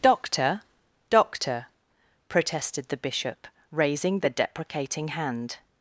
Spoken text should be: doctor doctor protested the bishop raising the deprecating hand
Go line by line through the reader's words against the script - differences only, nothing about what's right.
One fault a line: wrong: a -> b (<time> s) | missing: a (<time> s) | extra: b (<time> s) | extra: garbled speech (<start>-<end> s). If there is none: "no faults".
no faults